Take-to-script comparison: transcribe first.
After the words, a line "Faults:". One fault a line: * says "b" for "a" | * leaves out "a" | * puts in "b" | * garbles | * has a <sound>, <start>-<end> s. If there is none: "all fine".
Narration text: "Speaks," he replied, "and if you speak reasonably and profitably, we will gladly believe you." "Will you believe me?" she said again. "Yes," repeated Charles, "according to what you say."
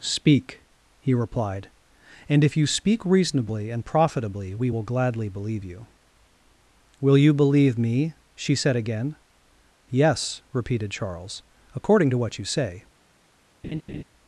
"Speak," he replied, "and if you speak reasonably and profitably, we will gladly believe you." "Will you believe me?" she said again. "Yes," repeated Charles, "according to what you say."
Faults:
* says "Speak" for "Speaks"
* has a laugh, 13.6-14.0 s